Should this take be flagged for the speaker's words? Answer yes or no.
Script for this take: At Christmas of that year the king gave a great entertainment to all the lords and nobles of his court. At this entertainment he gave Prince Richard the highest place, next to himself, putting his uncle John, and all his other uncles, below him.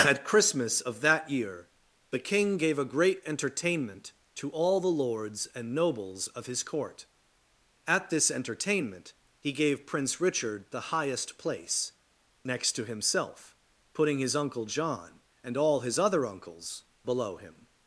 no